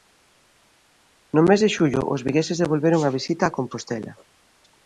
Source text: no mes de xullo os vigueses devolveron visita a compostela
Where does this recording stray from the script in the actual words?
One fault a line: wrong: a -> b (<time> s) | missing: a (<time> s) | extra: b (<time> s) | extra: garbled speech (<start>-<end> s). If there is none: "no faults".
extra: a (3.0 s)